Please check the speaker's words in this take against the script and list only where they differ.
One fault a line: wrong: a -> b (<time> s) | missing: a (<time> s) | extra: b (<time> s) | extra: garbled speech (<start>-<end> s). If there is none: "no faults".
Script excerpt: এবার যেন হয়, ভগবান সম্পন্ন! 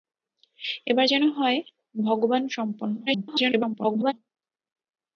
extra: garbled speech (3.1-4.1 s)